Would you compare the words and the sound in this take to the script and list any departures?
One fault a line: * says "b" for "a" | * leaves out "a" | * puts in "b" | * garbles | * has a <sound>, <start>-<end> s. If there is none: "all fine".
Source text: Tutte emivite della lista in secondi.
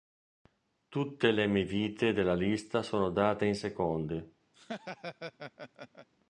* puts in "le"
* puts in "sono date"
* has a laugh, 4.5-6.1 s